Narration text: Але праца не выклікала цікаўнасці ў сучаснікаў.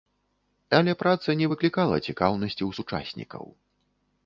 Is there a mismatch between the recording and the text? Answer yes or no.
no